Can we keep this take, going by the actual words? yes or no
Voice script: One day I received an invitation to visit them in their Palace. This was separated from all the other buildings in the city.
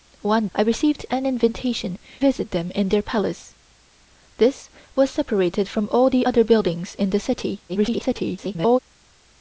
no